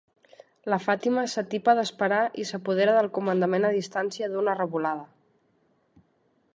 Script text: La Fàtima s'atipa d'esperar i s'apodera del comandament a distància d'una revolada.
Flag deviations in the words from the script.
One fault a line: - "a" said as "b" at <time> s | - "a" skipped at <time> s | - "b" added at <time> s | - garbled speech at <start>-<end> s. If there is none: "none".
none